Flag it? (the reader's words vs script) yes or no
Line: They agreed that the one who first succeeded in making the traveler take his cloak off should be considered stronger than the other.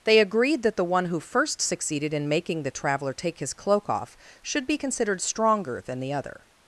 no